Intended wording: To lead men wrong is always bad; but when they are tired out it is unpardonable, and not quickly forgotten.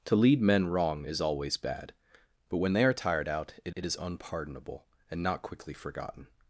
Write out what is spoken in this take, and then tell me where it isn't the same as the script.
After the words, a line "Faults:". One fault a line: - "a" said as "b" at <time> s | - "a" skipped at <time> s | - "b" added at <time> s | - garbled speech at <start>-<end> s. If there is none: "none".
To lead men wrong is always bad; but when they are tired out it it is unpardonable, and not quickly forgotten.
Faults:
- "it" added at 3.7 s